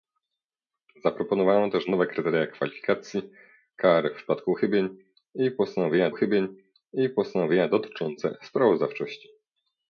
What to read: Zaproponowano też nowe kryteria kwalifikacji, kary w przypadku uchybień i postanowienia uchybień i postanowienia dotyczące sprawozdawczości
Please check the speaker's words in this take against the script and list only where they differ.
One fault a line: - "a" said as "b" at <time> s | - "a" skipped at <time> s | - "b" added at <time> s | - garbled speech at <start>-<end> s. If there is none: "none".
none